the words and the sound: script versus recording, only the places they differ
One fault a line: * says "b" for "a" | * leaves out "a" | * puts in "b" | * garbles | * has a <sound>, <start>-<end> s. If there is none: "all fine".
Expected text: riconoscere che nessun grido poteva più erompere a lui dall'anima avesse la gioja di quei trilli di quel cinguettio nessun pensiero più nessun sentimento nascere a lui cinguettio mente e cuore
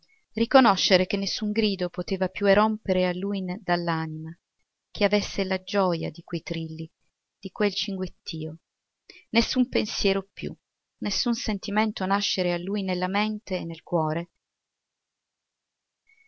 * puts in "che"
* says "nella" for "cinguettio"
* puts in "nel"